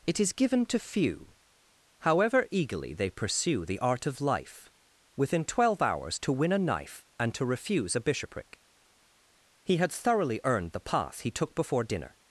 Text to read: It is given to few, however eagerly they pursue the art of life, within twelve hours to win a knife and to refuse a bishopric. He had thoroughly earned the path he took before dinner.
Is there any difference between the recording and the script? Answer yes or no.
no